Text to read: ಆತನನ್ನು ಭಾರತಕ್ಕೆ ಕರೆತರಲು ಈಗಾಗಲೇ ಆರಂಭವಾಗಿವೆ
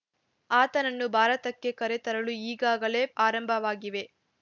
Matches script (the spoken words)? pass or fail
pass